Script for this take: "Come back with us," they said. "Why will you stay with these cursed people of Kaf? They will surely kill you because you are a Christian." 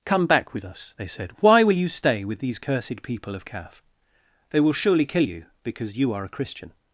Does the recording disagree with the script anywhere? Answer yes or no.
no